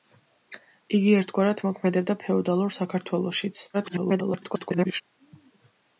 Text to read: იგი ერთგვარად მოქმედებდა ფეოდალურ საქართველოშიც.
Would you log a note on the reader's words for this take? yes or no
yes